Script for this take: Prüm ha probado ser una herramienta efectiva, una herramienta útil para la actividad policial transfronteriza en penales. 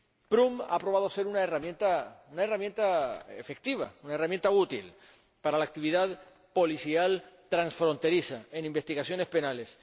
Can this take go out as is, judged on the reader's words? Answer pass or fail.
fail